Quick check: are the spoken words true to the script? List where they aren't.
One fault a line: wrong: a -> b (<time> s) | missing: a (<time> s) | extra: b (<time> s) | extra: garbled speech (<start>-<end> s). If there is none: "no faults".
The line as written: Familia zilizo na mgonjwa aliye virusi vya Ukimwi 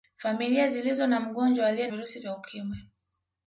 no faults